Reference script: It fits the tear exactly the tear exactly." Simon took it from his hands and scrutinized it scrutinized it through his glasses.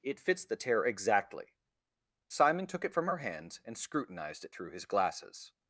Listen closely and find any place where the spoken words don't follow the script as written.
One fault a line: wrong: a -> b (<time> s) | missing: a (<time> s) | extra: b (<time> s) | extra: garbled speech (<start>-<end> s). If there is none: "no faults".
missing: the tear exactly (1.6 s)
wrong: his -> her (3.1 s)
missing: scrutinized it (4.5 s)